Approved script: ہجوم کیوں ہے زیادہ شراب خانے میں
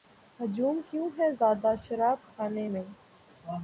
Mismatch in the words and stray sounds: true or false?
false